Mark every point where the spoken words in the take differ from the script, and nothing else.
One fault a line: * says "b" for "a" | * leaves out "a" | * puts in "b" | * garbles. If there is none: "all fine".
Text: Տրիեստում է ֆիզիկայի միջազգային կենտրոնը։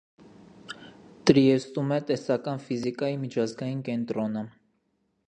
* puts in "տեսական"